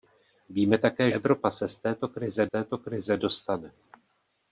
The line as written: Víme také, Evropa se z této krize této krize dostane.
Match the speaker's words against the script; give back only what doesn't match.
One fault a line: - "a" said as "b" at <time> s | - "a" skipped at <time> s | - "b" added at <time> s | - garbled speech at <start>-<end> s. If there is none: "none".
none